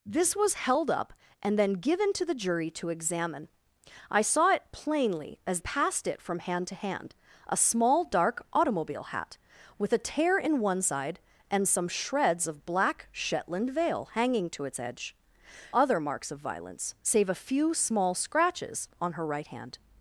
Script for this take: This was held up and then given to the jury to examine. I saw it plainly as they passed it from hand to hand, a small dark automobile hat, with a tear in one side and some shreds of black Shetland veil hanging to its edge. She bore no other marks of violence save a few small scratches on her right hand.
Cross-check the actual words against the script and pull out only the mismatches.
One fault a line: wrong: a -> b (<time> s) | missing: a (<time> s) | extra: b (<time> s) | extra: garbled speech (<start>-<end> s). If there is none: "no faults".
missing: they (5.6 s)
missing: She bore no (15.2 s)